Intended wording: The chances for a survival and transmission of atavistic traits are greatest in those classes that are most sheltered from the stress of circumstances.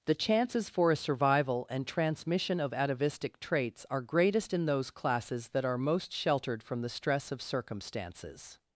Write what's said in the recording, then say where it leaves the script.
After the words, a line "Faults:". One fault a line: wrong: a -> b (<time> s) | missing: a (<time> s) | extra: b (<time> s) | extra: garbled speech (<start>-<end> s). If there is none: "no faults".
The chances for a survival and transmission of atavistic traits are greatest in those classes that are most sheltered from the stress of circumstances.
Faults:
no faults